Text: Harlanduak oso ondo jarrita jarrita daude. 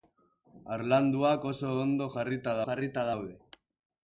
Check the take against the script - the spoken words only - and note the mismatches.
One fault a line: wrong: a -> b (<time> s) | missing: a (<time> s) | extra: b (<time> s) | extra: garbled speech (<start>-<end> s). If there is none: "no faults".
no faults